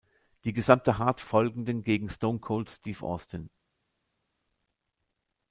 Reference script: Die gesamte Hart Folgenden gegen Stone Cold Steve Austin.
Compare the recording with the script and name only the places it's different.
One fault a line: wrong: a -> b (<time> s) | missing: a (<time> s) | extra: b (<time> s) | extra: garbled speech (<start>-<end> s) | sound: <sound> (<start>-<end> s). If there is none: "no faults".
no faults